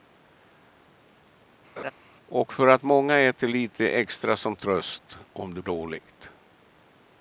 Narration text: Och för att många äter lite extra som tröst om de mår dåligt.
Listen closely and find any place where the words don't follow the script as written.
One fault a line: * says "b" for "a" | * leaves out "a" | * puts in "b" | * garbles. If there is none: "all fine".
* leaves out "mår"